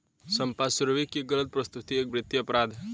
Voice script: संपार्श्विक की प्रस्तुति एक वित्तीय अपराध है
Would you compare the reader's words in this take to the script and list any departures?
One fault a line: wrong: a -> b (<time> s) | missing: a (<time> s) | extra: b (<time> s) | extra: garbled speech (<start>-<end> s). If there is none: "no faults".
extra: गलत (1.2 s)